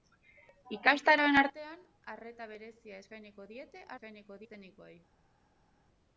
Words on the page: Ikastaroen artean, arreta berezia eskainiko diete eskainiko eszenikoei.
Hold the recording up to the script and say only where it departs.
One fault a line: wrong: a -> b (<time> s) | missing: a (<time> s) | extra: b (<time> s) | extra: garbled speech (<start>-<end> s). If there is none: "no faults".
no faults